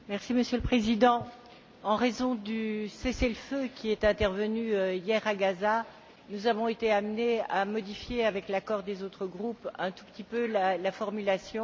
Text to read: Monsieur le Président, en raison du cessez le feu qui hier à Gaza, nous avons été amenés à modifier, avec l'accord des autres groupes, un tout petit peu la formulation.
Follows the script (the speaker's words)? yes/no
no